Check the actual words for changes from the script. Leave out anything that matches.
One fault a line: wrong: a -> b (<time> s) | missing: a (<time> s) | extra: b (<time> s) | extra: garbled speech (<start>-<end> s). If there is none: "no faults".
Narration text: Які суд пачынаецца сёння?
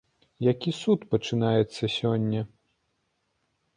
no faults